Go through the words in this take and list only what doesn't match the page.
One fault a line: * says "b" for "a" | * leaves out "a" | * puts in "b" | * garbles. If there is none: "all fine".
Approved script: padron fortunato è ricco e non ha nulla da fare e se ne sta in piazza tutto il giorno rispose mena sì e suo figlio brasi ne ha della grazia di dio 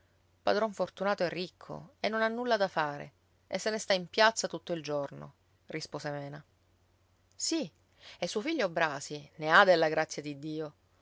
all fine